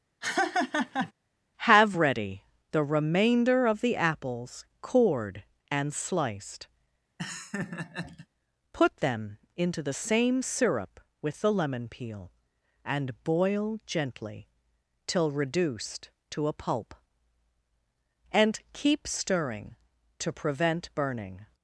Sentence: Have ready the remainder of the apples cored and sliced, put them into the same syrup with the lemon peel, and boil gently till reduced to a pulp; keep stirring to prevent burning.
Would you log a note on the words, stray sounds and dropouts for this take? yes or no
yes